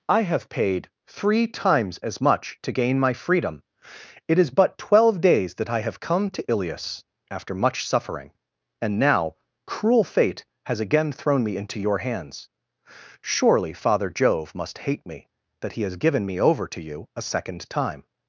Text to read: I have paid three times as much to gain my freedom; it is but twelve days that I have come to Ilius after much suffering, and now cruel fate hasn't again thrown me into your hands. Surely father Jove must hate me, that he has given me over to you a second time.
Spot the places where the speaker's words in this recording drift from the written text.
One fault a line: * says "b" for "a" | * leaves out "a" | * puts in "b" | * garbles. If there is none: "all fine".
* says "has" for "hasn't"